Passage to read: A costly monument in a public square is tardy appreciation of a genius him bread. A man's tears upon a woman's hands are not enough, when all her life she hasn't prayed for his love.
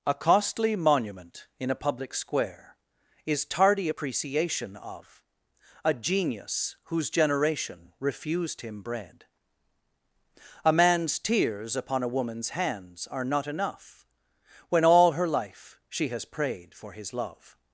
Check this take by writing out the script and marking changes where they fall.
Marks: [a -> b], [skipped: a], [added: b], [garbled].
A costly monument in a public square is tardy appreciation of a genius [added: whose generation refused] him bread. A man's tears upon a woman's hands are not enough, when all her life she [hasn't -> has] prayed for his love.